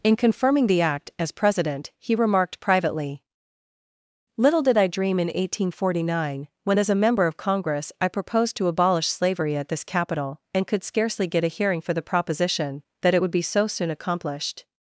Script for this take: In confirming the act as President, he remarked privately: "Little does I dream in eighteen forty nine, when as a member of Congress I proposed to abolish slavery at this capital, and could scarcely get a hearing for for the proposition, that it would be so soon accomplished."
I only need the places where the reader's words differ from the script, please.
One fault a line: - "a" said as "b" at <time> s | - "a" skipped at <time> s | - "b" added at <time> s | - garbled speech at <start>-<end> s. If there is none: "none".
- "does" said as "did" at 4.6 s
- "for" skipped at 11.9 s